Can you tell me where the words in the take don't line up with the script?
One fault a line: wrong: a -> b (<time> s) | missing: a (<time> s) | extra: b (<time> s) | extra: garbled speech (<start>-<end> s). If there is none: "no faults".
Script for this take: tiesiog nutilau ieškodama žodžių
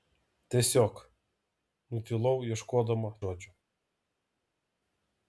no faults